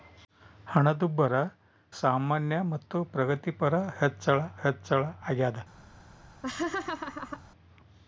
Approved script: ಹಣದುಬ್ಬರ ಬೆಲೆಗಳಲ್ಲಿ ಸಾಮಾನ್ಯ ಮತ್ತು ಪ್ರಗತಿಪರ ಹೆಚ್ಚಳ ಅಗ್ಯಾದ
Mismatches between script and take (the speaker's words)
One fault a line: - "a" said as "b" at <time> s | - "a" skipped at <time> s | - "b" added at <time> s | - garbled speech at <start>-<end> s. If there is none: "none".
- "ಬೆಲೆಗಳಲ್ಲಿ" skipped at 1.3 s
- "ಹೆಚ್ಚಳ" added at 4.6 s